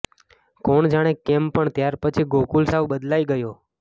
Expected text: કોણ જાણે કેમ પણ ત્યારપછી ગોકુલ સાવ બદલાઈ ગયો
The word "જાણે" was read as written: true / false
true